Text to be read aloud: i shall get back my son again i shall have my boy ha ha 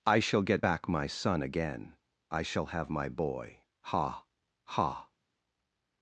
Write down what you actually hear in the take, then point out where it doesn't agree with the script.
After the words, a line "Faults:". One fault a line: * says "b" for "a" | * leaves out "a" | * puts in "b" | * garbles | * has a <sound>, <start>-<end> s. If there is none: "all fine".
i shall get back my son again i shall have my boy ha ha
Faults:
all fine